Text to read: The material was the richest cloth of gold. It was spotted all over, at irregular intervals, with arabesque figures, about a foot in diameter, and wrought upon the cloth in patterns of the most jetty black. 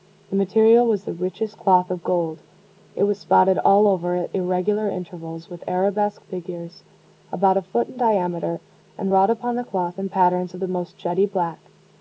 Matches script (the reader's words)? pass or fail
pass